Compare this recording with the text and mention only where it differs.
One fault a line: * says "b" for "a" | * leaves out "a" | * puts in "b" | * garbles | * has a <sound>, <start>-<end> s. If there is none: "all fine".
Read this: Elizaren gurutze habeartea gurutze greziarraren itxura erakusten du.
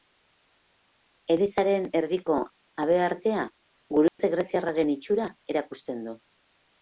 * says "erdiko" for "gurutze"
* has a dropout, 4.1-4.2 s